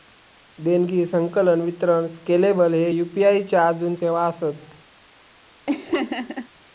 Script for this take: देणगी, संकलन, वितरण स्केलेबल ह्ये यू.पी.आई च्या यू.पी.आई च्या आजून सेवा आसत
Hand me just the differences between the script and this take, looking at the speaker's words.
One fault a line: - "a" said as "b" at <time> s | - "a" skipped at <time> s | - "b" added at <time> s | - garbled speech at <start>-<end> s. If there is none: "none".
- "यू.पी.आई च्या" skipped at 3.7 s